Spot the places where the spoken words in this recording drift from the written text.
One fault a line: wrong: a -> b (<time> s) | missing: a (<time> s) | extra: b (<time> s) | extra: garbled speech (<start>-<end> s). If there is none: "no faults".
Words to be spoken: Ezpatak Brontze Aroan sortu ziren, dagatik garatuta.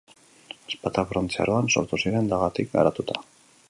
no faults